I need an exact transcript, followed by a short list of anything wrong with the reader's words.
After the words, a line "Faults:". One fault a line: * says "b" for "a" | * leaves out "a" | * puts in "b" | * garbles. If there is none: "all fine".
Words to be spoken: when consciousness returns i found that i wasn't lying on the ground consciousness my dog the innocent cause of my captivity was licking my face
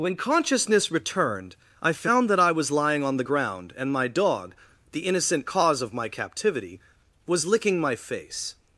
when consciousness returned i found that i was lying on the ground and my dog the innocent cause of my captivity was licking my face
Faults:
* says "returned" for "returns"
* says "was" for "wasn't"
* says "and" for "consciousness"